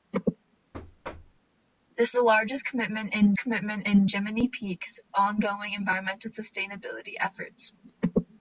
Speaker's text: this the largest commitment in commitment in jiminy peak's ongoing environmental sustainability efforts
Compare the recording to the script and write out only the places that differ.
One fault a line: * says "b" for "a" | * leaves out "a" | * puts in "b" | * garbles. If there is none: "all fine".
all fine